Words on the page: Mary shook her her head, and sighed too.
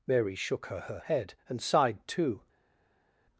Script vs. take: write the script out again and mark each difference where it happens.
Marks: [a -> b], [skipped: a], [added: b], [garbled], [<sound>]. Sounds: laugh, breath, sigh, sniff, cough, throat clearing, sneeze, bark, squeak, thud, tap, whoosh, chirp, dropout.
Mary shook her her head, and sighed too.